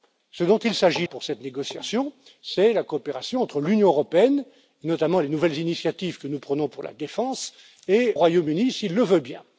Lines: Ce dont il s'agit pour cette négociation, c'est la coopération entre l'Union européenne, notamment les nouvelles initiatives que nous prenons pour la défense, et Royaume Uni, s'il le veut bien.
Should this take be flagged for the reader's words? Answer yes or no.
no